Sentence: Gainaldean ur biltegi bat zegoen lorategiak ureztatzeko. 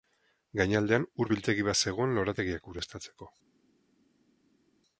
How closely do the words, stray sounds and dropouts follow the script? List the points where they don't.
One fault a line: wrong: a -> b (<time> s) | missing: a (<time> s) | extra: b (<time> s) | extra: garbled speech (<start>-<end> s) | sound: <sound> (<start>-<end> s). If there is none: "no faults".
no faults